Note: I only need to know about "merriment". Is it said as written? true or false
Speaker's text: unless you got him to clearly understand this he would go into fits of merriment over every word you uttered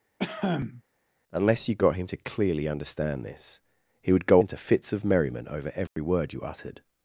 true